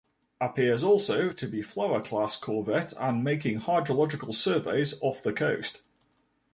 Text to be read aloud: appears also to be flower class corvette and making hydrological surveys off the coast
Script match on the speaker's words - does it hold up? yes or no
yes